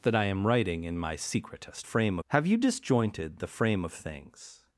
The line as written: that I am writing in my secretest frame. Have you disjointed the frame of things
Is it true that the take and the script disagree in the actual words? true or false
false